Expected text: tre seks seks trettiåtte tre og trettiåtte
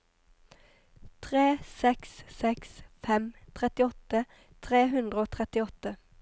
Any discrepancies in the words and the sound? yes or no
yes